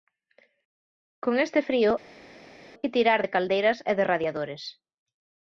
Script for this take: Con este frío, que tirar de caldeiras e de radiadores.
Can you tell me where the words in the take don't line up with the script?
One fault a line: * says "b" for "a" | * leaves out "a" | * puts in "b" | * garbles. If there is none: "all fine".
all fine